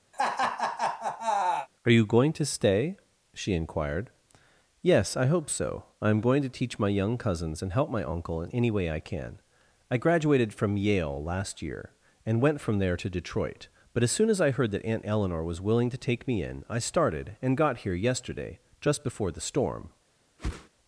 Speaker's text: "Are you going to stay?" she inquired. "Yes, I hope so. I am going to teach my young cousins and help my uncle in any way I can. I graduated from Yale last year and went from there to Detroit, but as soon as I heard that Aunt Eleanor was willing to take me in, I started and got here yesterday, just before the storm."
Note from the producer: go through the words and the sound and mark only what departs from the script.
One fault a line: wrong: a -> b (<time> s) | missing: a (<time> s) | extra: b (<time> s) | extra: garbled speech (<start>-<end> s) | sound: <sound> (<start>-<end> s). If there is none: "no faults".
sound: laugh (0.1-1.7 s)
sound: whoosh (20.4-20.7 s)